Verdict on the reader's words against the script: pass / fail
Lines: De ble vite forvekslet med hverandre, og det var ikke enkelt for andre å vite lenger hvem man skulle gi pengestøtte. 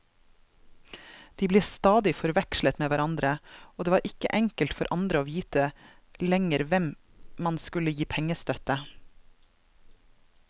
fail